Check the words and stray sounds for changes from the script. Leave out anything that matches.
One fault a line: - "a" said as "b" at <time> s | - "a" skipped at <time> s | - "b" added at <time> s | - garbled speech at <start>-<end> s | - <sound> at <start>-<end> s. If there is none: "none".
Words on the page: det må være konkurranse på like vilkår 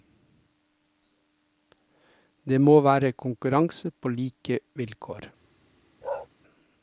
- bark at 6.0-6.3 s